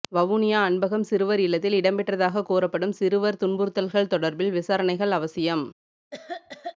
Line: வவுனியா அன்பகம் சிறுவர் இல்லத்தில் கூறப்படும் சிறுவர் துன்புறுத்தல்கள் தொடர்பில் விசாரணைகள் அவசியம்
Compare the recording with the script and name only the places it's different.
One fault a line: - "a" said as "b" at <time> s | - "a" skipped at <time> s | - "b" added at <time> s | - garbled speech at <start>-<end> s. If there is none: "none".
- "இடம்பெற்றதாக" added at 1.8 s